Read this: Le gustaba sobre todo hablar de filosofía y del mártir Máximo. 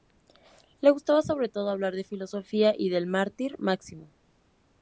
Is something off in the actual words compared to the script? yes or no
no